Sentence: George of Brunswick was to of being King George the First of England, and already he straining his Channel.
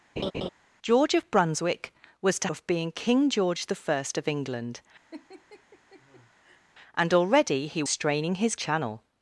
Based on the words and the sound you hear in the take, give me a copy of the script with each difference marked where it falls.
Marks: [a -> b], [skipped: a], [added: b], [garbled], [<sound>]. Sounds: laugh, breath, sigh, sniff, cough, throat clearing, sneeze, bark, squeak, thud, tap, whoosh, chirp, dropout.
[laugh] George of Brunswick was to of being King George the First of England, [laugh] and already he straining his Channel.